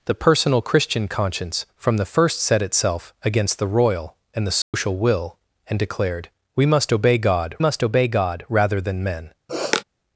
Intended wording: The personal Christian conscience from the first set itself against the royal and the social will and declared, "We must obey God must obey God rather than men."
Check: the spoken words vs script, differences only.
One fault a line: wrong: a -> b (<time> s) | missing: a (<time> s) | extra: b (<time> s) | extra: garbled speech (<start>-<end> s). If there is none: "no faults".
no faults